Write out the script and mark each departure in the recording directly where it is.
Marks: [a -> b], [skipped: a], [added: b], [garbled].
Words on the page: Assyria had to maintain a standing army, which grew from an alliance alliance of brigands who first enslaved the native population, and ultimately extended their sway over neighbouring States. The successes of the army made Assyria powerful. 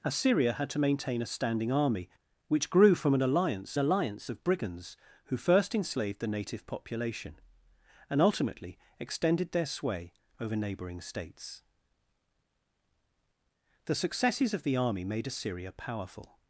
Assyria had to maintain a standing army, which grew from an alliance alliance of brigands who first enslaved the native population, and ultimately extended their sway over neighbouring States. The successes of the army made Assyria powerful.